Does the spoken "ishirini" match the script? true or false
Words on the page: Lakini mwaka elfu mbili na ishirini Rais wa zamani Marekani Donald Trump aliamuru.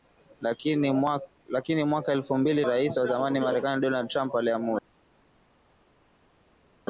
false